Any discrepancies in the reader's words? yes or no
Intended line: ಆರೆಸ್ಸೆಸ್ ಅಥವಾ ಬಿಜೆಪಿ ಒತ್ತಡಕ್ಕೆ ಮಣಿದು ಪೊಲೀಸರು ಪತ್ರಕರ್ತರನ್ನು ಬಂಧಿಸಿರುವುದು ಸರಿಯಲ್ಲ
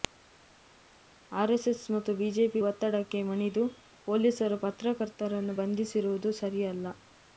yes